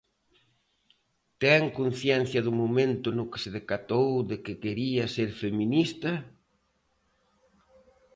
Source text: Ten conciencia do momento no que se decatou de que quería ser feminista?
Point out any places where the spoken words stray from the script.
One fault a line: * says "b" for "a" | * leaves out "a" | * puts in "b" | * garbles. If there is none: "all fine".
all fine